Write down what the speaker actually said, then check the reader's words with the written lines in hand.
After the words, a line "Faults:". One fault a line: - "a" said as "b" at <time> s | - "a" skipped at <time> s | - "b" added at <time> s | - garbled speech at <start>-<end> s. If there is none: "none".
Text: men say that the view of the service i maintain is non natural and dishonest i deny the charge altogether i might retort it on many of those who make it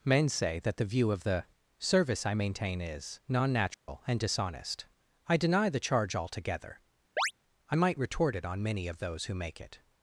men say that the view of the service i maintain is non natural and dishonest i deny the charge altogether i might retort it on many of those who make it
Faults:
none